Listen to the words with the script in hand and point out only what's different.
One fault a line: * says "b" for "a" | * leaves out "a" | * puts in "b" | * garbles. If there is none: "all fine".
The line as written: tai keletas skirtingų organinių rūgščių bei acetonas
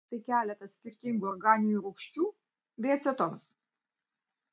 all fine